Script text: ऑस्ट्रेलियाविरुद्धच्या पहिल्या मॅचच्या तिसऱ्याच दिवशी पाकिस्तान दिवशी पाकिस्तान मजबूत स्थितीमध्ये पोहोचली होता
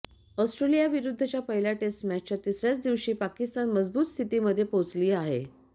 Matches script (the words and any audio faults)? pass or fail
fail